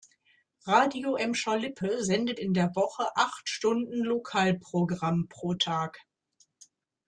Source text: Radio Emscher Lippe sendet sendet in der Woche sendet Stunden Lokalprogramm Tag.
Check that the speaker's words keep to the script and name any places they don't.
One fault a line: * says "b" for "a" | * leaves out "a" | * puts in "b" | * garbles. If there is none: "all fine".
* leaves out "sendet"
* says "acht" for "sendet"
* puts in "pro"